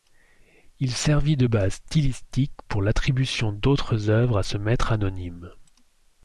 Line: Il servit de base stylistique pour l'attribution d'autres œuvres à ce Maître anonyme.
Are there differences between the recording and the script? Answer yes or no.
no